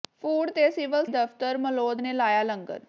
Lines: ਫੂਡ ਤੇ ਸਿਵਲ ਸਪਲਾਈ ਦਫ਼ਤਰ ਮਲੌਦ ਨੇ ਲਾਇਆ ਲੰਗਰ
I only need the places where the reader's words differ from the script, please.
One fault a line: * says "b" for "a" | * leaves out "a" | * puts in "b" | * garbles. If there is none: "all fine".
* leaves out "ਸਪਲਾਈ"